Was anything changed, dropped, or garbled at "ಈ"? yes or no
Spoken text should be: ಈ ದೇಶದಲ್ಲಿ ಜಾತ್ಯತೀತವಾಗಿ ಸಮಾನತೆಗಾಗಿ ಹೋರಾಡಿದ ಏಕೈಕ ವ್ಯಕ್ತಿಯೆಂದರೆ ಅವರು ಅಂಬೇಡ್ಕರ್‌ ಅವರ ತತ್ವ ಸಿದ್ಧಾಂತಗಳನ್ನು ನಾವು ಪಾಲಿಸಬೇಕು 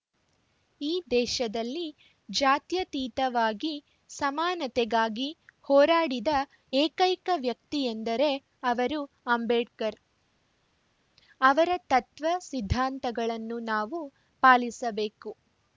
no